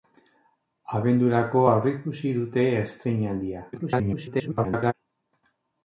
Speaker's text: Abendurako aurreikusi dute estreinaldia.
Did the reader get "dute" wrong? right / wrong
right